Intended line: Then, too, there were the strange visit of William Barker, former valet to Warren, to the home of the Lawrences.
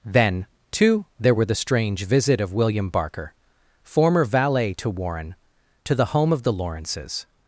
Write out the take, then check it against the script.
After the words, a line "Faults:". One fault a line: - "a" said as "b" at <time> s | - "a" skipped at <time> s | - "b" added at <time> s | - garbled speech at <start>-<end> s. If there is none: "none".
Then, too, there were the strange visit of William Barker, former valet to Warren, to the home of the Lawrences.
Faults:
none